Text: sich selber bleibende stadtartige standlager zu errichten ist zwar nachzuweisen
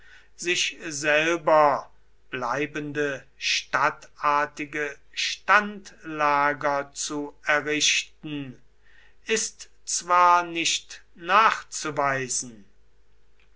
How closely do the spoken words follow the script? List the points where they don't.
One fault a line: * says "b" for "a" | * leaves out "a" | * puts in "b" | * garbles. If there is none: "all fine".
* puts in "nicht"